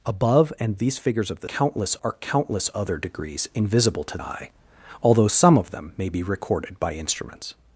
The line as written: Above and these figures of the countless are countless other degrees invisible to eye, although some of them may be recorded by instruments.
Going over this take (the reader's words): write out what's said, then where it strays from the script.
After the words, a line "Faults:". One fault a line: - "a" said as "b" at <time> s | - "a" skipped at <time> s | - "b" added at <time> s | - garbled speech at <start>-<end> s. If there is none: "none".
Above and these figures of the countless are countless other degrees invisible to eye, although some of them may be recorded by instruments.
Faults:
none